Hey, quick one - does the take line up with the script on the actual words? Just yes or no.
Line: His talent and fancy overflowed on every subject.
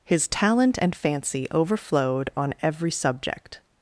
yes